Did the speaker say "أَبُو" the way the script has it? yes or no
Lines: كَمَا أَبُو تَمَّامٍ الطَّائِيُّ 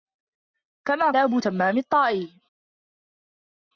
yes